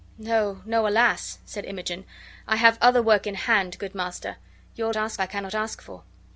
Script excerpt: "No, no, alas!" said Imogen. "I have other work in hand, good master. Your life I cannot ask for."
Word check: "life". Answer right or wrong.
wrong